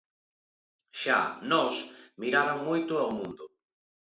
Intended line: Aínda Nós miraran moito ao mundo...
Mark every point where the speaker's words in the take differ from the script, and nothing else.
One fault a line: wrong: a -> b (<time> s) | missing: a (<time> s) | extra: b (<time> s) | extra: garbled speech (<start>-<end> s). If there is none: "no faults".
wrong: Aínda -> Xa (1.0 s)